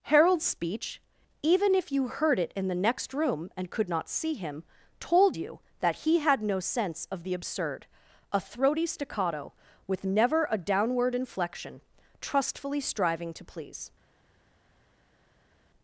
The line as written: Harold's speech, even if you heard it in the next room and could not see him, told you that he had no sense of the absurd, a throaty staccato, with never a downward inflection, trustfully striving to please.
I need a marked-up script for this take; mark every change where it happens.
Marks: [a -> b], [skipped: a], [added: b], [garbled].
Harold's speech, even if you heard it in the next room and could not see him, told you that he had no sense of the absurd, a throaty staccato, with never a downward inflection, trustfully striving to please.